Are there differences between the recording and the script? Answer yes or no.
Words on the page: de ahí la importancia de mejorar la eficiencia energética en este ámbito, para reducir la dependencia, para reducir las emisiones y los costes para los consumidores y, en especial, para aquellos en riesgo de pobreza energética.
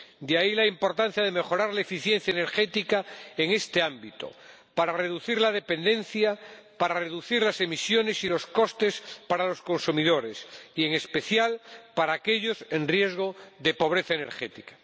no